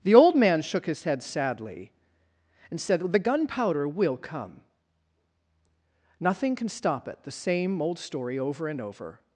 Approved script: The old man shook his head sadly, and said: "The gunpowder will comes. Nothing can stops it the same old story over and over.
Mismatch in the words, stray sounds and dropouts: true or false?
true